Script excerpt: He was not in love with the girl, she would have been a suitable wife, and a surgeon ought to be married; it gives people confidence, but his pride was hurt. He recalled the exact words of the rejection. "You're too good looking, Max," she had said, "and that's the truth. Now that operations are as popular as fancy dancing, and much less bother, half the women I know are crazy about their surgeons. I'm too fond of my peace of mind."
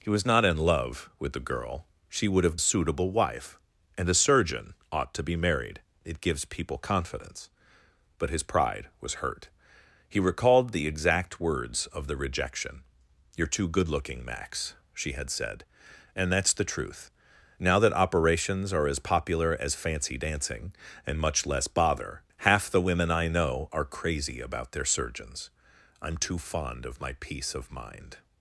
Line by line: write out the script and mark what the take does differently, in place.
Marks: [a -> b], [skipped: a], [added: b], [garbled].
He was not in love with the girl, she would have [skipped: been a] suitable wife, and a surgeon ought to be married; it gives people confidence, but his pride was hurt. He recalled the exact words of the rejection. "You're too good looking, Max," she had said, "and that's the truth. Now that operations are as popular as fancy dancing, and much less bother, half the women I know are crazy about their surgeons. I'm too fond of my peace of mind."